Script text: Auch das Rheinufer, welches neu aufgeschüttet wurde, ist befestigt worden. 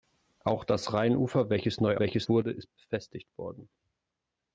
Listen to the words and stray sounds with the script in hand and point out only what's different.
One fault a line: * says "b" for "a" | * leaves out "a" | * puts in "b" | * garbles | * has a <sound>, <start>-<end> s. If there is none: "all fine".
* says "welches" for "aufgeschüttet"